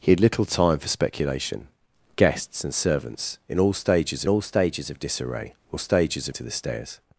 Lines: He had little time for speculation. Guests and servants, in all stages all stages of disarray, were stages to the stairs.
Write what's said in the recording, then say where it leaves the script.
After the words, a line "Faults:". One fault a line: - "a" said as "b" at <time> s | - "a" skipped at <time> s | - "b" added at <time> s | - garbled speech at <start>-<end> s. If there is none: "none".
He had little time for speculation. Guests and servants, in all stages all stages of disarray, were stages to the stairs.
Faults:
none